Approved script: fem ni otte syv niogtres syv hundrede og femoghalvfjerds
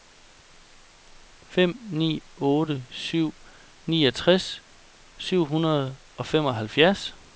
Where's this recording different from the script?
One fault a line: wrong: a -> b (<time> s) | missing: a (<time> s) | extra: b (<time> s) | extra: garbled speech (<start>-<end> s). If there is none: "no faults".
no faults